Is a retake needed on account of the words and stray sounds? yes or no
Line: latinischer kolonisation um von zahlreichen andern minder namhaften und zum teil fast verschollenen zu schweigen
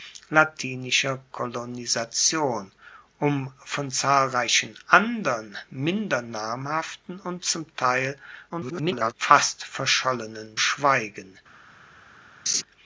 yes